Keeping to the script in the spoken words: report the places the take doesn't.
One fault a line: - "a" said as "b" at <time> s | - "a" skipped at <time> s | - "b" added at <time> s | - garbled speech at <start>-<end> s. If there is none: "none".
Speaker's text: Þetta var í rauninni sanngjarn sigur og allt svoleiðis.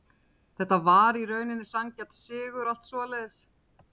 none